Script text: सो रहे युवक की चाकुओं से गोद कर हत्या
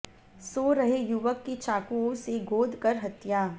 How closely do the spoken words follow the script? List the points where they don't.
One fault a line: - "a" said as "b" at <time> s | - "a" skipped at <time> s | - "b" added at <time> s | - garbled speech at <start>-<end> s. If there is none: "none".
none